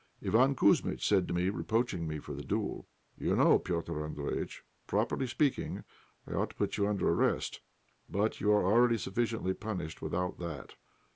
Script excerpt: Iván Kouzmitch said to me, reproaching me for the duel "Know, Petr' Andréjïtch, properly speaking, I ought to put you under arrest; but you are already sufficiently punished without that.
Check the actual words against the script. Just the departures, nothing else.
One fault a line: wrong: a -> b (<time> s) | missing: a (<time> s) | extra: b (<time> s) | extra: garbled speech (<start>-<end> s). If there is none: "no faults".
extra: You (3.2 s)